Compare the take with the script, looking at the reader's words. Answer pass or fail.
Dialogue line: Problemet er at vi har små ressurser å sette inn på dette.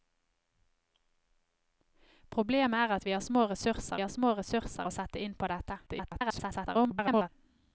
fail